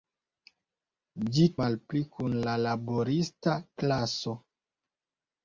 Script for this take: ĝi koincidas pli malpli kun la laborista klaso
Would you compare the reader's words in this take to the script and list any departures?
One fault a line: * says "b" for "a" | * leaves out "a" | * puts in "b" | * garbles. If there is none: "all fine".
* leaves out "koincidas pli"